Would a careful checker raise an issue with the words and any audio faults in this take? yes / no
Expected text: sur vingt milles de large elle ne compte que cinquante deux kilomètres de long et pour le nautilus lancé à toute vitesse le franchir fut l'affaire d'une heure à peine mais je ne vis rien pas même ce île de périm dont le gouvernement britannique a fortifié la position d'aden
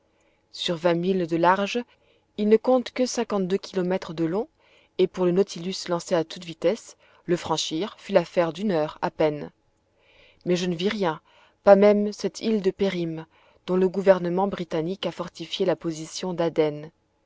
yes